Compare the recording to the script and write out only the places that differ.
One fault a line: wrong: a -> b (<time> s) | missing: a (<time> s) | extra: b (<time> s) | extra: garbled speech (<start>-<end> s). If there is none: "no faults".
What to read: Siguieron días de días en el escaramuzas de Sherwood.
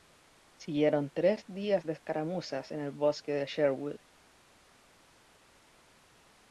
extra: tres (1.1 s)
wrong: días -> escaramuzas (1.9 s)
wrong: escaramuzas -> bosque (2.9 s)